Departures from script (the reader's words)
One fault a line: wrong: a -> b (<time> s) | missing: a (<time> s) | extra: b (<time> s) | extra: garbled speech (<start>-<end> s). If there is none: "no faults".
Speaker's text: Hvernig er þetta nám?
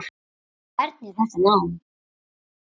no faults